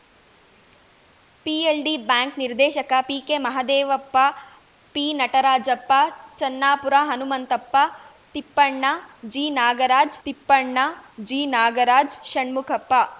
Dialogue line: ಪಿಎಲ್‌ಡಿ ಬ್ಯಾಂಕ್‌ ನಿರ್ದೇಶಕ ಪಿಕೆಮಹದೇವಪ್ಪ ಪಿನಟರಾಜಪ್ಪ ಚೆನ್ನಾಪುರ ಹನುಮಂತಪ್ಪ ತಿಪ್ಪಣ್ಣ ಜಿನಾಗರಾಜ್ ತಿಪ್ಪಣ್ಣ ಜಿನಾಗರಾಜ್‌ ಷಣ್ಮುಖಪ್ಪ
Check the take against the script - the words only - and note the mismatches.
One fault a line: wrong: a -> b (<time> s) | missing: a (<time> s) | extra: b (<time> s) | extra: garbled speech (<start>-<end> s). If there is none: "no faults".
no faults